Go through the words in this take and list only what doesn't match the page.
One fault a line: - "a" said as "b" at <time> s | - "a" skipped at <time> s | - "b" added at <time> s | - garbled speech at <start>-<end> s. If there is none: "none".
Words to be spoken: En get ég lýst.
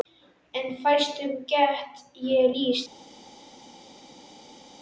- "fæstum" added at 0.8 s